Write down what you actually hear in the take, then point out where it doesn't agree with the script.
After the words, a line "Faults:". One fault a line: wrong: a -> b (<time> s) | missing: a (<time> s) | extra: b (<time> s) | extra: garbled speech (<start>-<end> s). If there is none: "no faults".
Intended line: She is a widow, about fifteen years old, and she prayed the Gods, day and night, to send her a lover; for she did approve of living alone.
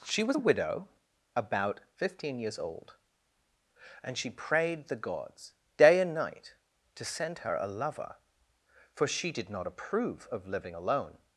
She was a widow, about fifteen years old, and she prayed the Gods, day and night, to send her a lover; for she did not approve of living alone.
Faults:
wrong: is -> was (0.2 s)
extra: not (9.5 s)